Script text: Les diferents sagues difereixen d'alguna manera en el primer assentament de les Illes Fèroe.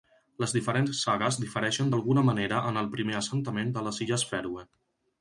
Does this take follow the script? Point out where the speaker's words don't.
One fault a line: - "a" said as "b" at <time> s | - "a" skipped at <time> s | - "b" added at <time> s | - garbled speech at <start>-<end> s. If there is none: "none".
none